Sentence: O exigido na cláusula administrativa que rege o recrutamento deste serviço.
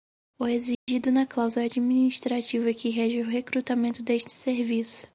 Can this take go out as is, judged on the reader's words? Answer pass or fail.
pass